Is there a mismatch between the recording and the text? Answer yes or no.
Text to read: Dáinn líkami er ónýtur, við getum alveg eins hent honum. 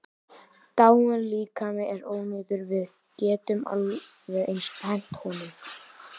no